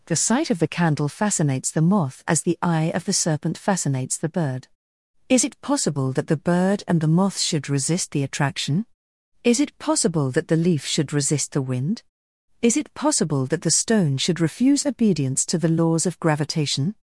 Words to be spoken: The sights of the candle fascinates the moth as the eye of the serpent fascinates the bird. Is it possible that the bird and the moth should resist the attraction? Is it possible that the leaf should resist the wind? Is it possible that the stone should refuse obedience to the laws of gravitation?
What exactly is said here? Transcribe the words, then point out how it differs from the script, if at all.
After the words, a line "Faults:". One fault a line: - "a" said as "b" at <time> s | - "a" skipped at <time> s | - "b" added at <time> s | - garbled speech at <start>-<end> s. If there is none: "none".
The sight of the candle fascinates the moth as the eye of the serpent fascinates the bird. Is it possible that the bird and the moth should resist the attraction? Is it possible that the leaf should resist the wind? Is it possible that the stone should refuse obedience to the laws of gravitation?
Faults:
- "sights" said as "sight" at 0.1 s